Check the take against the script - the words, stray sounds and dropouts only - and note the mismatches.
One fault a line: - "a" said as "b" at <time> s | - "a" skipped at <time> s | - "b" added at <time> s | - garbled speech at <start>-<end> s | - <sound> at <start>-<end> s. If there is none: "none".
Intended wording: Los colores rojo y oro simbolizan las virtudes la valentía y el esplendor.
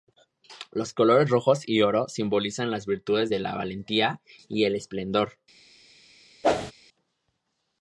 - "de" added at 3.3 s
- whoosh at 6.4-6.7 s